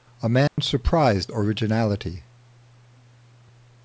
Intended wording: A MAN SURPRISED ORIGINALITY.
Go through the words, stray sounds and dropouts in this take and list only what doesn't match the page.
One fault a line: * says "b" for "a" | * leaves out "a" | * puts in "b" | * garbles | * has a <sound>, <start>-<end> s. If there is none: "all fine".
* has a dropout, 0.5-0.6 s